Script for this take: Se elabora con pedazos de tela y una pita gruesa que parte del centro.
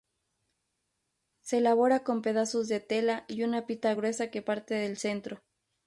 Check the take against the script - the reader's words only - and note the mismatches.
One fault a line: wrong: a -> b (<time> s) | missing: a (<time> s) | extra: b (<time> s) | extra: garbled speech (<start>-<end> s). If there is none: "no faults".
no faults